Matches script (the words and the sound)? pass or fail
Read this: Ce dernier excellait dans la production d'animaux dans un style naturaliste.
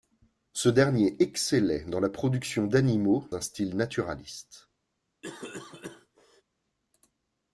fail